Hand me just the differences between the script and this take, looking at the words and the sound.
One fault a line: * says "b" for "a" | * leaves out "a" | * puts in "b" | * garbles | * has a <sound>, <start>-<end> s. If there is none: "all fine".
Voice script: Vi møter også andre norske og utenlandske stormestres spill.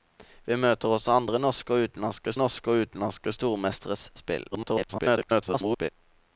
* puts in "norske og utenlandske"
* garbles